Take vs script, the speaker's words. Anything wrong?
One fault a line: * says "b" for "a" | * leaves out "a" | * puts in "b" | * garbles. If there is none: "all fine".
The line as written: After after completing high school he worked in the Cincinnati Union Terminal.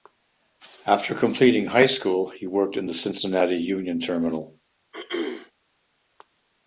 * leaves out "after"